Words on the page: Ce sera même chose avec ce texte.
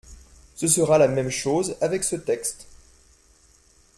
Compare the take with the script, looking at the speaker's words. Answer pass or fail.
fail